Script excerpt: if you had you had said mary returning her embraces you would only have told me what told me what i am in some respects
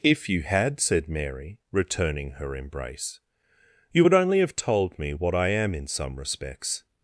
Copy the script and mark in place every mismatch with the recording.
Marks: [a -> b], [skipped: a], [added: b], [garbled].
if you had [skipped: you had] said mary returning her [embraces -> embrace] you would only have told me what [skipped: told me what] i am in some respects